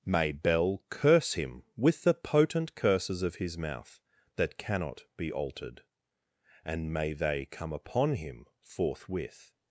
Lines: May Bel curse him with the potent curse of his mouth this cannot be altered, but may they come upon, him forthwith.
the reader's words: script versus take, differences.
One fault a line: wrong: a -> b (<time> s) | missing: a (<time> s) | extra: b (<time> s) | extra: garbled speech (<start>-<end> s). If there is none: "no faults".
wrong: curse -> curses (2.7 s)
wrong: this -> that (4.3 s)
wrong: but -> and (6.7 s)